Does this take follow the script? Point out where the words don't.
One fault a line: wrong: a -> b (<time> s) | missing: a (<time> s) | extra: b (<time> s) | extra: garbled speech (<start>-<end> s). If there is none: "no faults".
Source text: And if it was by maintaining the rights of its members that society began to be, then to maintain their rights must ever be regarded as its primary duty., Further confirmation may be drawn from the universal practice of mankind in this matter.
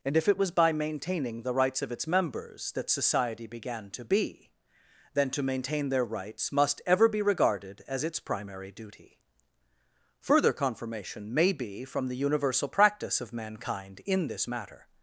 missing: drawn (11.9 s)